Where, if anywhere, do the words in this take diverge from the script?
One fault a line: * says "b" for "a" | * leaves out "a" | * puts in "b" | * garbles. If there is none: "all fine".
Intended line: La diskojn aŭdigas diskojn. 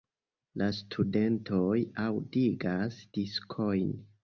* says "studentoj" for "diskojn"